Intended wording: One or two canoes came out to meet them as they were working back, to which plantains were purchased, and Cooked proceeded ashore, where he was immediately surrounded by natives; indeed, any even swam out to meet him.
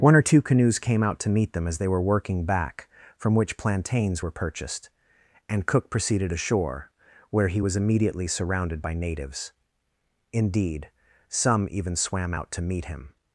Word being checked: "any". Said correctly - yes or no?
no